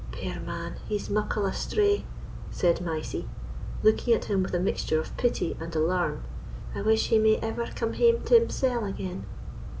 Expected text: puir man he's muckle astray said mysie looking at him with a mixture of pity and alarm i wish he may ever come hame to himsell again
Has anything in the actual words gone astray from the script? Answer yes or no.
no